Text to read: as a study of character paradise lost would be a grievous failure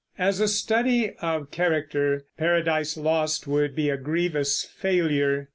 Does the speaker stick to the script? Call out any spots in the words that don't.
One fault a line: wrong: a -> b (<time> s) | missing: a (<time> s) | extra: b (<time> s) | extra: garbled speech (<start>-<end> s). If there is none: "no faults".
no faults